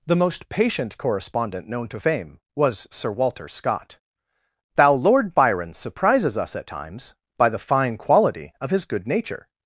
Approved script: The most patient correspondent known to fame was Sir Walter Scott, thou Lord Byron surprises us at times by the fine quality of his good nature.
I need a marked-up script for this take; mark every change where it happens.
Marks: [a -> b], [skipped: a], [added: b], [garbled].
The most patient correspondent known to fame was Sir Walter Scott, thou Lord Byron surprises us at times by the fine quality of his good nature.